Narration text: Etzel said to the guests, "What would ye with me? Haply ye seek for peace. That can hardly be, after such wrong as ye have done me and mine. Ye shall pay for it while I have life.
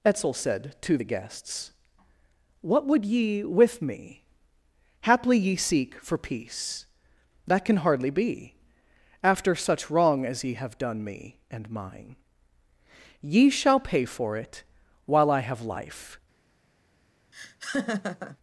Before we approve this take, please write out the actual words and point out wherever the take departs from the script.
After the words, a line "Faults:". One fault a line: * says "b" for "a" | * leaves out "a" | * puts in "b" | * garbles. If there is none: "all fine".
Etzel said to the guests, "What would ye with me? Haply ye seek for peace. That can hardly be, after such wrong as ye have done me and mine. Ye shall pay for it while I have life.
Faults:
all fine